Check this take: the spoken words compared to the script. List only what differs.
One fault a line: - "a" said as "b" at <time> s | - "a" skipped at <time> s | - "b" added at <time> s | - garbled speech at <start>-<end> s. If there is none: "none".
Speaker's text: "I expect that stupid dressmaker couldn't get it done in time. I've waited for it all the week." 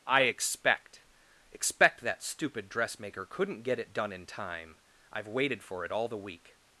- "expect" added at 1.5 s